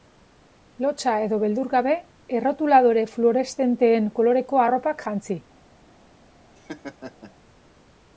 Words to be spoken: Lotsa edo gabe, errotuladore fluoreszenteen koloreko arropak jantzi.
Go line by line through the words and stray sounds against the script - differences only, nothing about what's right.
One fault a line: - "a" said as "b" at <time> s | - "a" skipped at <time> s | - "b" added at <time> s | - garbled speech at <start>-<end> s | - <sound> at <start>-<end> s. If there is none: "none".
- "beldur" added at 1.4 s
- laugh at 6.6-7.3 s